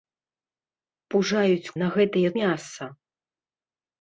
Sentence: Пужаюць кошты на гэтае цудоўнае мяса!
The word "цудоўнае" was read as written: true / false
false